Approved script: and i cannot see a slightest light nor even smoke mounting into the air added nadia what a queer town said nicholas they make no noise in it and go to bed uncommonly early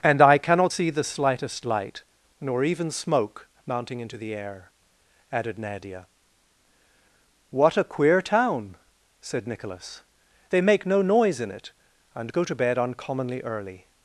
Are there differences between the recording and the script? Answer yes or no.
yes